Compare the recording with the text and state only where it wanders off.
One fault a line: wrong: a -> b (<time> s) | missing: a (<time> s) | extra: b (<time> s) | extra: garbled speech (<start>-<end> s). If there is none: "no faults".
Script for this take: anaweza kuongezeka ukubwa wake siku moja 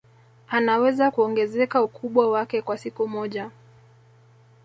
extra: kwa (2.6 s)